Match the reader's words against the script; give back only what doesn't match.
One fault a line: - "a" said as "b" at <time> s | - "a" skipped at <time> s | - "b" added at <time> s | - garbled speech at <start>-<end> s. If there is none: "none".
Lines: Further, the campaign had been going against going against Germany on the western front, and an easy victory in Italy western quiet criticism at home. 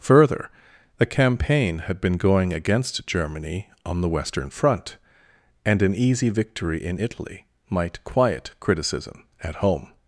- "going against" skipped at 3.0 s
- "western" said as "might" at 7.7 s